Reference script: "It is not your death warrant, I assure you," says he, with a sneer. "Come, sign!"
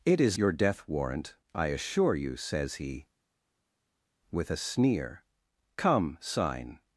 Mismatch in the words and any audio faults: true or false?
true